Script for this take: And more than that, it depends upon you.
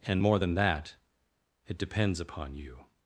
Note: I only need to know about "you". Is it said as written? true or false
true